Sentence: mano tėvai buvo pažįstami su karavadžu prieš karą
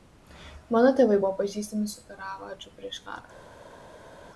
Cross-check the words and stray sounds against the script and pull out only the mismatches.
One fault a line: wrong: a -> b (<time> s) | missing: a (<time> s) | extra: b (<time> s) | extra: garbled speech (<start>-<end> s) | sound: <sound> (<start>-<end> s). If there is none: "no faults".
no faults